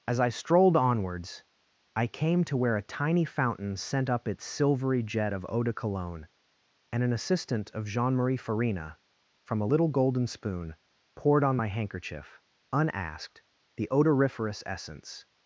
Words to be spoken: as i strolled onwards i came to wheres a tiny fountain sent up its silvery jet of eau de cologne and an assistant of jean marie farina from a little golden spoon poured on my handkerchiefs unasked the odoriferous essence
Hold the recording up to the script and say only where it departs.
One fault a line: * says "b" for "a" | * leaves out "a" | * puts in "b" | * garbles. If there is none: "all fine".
* says "where" for "wheres"
* says "handkerchief" for "handkerchiefs"